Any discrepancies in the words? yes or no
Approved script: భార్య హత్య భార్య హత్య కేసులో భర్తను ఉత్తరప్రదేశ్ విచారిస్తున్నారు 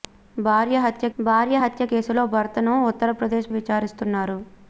no